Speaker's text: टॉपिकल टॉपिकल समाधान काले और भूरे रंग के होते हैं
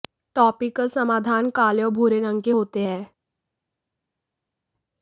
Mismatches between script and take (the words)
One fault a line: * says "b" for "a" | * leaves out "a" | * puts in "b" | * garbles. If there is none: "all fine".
* leaves out "टॉपिकल"